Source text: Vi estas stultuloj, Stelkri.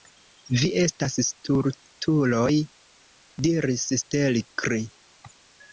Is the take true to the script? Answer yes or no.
no